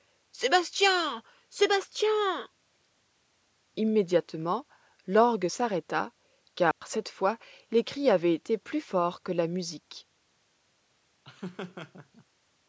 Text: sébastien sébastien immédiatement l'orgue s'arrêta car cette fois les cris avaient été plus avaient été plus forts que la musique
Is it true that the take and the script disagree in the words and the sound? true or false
true